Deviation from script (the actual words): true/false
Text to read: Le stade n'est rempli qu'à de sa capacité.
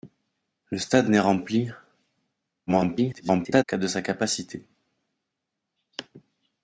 true